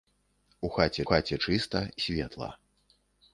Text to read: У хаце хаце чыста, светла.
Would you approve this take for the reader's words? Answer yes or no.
yes